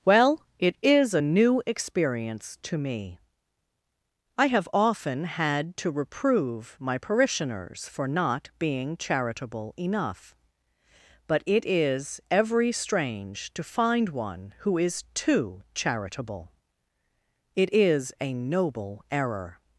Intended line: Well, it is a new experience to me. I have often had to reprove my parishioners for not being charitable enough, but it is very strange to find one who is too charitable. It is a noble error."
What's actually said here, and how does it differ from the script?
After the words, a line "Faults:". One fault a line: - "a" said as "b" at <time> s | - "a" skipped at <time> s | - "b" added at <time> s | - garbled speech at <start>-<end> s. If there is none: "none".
Well, it is a new experience to me. I have often had to reprove my parishioners for not being charitable enough, but it is every strange to find one who is too charitable. It is a noble error."
Faults:
- "very" said as "every" at 12.3 s